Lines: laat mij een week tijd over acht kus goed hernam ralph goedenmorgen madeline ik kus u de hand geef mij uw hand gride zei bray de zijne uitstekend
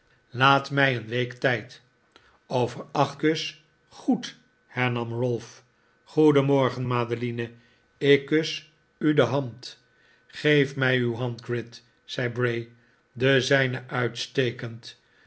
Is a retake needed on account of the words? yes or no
no